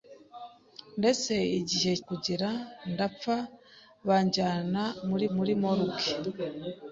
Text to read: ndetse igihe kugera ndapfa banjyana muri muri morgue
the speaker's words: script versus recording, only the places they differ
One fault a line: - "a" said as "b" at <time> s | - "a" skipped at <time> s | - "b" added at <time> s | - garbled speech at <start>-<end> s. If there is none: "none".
none